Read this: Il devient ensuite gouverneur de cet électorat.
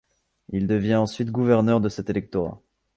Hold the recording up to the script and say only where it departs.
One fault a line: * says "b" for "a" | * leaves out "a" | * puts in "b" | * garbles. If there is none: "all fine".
all fine